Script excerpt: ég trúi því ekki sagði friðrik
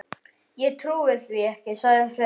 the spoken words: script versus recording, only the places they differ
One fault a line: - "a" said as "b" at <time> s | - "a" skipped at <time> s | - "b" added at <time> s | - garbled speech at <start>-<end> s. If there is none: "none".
none